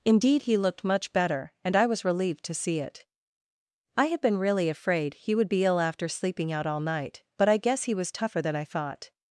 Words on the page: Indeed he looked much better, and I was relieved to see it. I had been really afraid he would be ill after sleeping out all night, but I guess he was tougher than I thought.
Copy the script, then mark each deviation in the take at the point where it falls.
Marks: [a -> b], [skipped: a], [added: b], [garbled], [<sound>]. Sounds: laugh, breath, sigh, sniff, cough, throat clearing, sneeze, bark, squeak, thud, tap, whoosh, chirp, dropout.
Indeed he looked much better, and I was relieved to see it. I had been really afraid he would be ill after sleeping out all night, but I guess he was tougher than I thought.